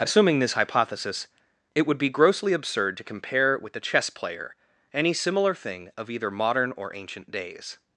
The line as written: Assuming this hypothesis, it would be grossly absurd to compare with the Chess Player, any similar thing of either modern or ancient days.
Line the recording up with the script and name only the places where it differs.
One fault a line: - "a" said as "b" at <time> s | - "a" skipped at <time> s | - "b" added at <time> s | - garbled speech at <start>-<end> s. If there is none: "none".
none